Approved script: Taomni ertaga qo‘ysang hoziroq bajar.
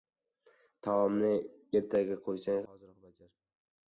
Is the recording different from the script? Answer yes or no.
no